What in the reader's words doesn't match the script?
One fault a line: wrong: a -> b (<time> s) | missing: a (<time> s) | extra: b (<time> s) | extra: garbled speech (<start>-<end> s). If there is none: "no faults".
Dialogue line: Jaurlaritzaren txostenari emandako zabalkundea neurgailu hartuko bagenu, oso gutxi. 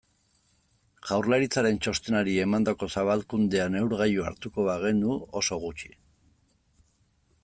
no faults